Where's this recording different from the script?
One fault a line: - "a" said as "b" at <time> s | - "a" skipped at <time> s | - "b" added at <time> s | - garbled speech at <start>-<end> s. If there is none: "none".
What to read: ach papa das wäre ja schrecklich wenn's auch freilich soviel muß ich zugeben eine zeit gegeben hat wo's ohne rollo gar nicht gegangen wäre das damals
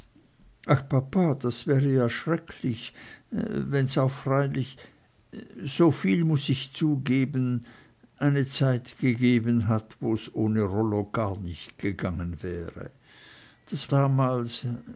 none